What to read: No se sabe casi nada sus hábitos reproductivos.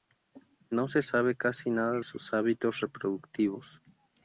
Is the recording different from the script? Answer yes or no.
no